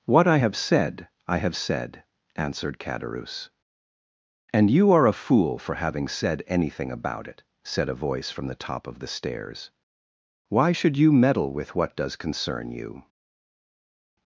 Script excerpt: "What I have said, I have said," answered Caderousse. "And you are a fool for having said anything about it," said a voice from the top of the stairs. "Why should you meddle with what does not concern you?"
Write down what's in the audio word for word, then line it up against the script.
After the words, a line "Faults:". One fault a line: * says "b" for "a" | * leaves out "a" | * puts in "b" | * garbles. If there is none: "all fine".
"What I have said, I have said," answered Caderousse. "And you are a fool for having said anything about it," said a voice from the top of the stairs. "Why should you meddle with what does concern you?"
Faults:
* leaves out "not"